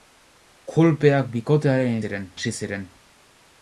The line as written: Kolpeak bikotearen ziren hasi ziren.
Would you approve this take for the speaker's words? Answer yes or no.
yes